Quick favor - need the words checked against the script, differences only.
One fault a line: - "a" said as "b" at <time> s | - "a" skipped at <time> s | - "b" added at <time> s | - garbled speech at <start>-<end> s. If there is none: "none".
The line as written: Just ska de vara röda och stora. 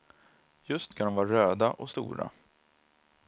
none